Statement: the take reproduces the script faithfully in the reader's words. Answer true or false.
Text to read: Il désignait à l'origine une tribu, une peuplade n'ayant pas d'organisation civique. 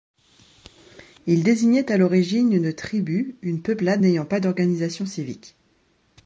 true